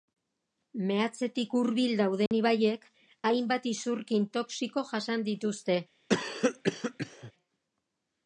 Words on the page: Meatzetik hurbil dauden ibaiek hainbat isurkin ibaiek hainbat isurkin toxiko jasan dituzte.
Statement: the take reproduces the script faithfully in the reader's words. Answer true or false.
false